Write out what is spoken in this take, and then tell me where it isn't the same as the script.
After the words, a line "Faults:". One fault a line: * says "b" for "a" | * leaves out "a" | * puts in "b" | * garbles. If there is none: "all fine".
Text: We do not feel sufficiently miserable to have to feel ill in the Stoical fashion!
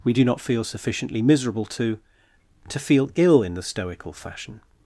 We do not feel sufficiently miserable to to feel ill in the Stoical fashion!
Faults:
* leaves out "have"